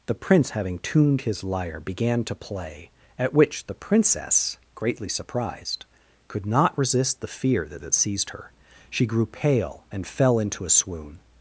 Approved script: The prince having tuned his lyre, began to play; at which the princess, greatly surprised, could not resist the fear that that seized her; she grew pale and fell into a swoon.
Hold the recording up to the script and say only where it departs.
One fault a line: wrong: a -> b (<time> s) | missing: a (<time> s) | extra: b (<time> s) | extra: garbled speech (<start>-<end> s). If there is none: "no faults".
no faults